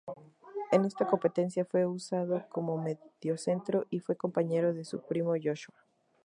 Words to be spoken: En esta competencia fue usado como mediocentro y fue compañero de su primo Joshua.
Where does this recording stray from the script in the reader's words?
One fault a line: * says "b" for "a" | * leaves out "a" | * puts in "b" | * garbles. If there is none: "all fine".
all fine